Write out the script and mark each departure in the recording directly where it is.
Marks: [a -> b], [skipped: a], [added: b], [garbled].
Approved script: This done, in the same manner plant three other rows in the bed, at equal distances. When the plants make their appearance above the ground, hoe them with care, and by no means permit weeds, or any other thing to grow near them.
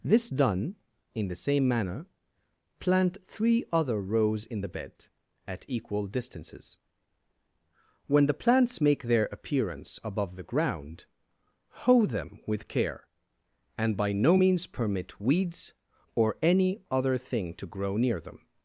This done, in the same manner plant three other rows in the bed, at equal distances. When the plants make their appearance above the ground, hoe them with care, and by no means permit weeds, or any other thing to grow near them.